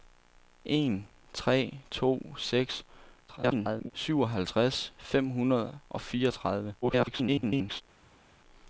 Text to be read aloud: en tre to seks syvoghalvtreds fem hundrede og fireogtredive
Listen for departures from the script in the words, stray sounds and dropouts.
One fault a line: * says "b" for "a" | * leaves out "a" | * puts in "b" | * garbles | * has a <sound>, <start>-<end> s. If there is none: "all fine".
* garbles
* garbles